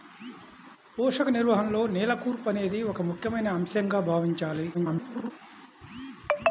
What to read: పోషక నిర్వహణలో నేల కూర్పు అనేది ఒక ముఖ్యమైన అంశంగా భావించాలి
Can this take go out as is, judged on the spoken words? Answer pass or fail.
fail